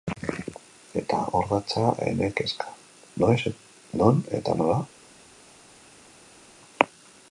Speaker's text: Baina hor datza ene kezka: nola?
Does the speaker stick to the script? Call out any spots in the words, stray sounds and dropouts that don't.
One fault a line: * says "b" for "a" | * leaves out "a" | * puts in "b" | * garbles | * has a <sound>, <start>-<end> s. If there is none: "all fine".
* says "Eta" for "Baina"
* puts in "noiz non eta"